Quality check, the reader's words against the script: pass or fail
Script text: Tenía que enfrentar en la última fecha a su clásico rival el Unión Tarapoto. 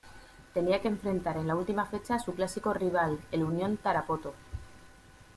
pass